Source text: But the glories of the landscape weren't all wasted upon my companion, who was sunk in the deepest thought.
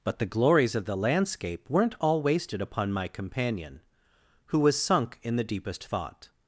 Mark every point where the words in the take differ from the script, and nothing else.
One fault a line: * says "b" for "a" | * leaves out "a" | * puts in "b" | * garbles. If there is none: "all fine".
all fine